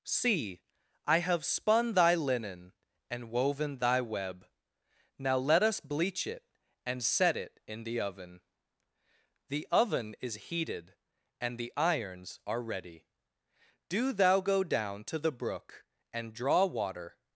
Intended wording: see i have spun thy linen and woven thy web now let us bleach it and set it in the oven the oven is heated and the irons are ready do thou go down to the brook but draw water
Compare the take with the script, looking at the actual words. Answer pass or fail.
fail